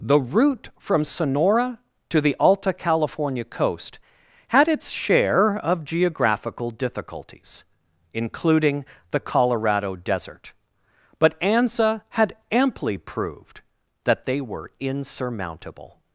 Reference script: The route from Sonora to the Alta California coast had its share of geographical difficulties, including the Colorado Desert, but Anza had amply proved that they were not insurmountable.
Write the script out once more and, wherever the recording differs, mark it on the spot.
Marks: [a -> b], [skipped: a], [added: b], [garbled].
The route from Sonora to the Alta California coast had its share of geographical difficulties, including the Colorado Desert, but Anza had amply proved that they were [skipped: not] insurmountable.